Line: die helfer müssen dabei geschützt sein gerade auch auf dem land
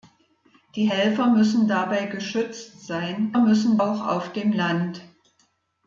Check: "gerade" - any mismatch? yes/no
yes